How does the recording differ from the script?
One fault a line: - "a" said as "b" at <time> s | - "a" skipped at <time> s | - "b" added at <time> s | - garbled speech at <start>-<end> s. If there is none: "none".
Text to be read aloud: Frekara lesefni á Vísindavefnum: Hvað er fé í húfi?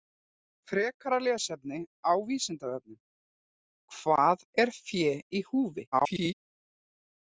- garbled speech at 5.9-6.3 s